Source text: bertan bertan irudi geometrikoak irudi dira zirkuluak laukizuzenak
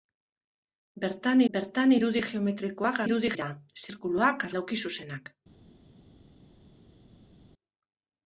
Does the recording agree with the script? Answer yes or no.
yes